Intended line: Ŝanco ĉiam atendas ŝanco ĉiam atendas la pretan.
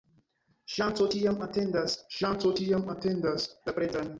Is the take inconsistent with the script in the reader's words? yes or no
no